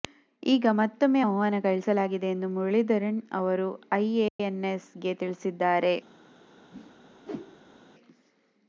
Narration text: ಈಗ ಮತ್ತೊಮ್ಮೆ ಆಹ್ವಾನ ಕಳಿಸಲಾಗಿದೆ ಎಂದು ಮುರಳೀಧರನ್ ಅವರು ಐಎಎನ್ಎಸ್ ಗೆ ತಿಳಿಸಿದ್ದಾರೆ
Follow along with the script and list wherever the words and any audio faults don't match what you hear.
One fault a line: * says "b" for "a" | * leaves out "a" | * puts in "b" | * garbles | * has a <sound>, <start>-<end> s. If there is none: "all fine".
* has a dropout, 4.3-4.4 s
* has a whoosh, 6.7-7.8 s